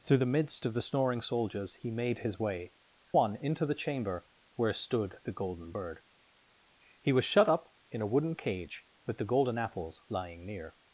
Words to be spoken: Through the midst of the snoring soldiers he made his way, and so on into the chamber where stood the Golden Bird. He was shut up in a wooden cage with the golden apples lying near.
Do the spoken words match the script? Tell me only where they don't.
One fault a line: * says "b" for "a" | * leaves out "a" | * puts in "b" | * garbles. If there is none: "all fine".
* leaves out "and so"